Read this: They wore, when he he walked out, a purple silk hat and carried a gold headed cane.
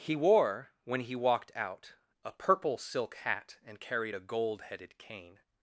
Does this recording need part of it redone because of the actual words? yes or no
yes